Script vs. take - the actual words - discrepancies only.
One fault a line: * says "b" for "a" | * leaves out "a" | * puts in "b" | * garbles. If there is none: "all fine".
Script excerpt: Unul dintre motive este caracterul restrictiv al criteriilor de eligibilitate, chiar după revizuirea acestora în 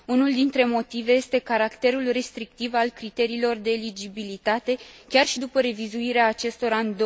* puts in "și"